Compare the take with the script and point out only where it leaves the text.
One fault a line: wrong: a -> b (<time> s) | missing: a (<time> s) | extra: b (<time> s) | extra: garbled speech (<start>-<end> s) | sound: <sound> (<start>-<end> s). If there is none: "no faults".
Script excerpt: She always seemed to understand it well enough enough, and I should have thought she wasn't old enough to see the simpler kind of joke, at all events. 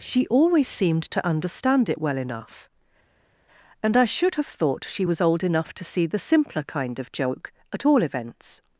missing: enough (2.7 s)
wrong: wasn't -> was (5.0 s)